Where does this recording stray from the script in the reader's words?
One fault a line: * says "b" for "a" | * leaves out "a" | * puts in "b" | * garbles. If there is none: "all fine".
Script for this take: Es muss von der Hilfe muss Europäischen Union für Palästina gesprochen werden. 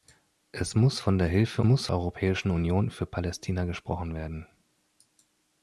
all fine